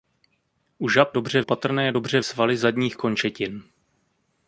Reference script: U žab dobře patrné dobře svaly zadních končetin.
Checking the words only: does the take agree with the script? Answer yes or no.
yes